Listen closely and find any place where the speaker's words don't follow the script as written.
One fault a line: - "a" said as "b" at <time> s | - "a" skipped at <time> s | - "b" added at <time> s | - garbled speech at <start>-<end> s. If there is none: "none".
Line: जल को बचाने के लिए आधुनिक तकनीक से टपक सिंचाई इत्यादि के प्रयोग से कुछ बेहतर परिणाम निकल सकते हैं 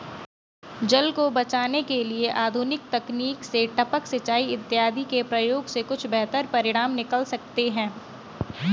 none